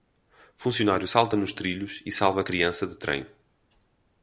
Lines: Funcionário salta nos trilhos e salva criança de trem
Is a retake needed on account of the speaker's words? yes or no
no